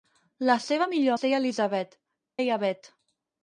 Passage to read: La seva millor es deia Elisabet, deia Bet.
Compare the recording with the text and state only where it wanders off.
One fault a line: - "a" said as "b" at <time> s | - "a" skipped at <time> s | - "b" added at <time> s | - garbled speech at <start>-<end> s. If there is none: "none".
none